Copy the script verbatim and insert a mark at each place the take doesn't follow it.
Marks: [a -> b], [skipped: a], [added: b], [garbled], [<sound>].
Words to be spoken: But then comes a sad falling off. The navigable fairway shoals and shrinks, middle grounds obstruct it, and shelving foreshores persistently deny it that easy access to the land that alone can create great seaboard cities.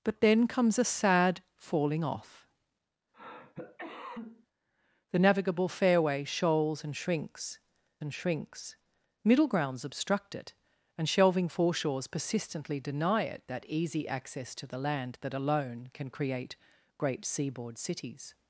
But then comes a sad falling off. [cough] The navigable fairway shoals and shrinks, [added: and shrinks] middle grounds obstruct it, and shelving foreshores persistently deny it that easy access to the land that alone can create great seaboard cities.